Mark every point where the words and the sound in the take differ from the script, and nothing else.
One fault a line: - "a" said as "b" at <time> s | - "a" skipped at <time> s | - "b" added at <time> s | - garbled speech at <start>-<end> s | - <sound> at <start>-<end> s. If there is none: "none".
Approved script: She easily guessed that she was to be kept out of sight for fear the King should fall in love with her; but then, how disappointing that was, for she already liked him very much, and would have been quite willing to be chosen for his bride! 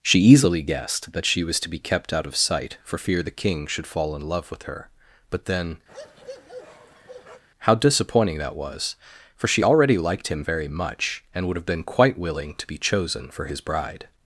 - bark at 5.9-7.4 s